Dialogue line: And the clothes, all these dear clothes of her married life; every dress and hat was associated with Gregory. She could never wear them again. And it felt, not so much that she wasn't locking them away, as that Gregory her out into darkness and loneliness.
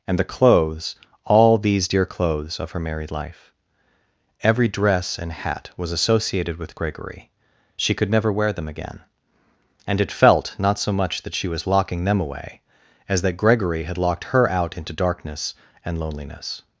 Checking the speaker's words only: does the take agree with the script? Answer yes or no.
no